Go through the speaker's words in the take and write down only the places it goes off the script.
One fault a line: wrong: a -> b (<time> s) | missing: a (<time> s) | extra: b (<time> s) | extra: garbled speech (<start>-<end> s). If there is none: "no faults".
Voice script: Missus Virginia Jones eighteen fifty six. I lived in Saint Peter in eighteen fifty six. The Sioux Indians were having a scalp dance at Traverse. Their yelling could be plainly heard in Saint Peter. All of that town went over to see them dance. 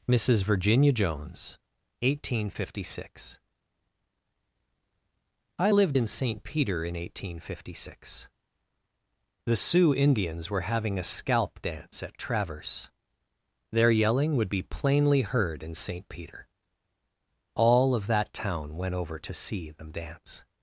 wrong: could -> would (14.4 s)